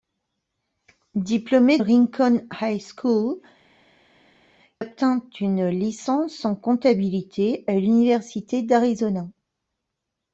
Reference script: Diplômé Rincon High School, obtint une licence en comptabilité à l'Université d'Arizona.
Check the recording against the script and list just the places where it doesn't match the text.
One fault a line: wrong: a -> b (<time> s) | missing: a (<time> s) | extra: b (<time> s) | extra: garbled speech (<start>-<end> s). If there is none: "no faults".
no faults